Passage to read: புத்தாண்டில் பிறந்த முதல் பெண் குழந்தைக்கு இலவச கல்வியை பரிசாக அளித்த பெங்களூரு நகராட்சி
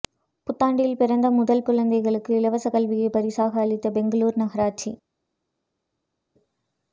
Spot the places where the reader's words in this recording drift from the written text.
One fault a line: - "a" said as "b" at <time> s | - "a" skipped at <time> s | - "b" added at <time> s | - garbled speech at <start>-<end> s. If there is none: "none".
- "பெண்" skipped at 1.6 s